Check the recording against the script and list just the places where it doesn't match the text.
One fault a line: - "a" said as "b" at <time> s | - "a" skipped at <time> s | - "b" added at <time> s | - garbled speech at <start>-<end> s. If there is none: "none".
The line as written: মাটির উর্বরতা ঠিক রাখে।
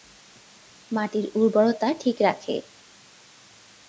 none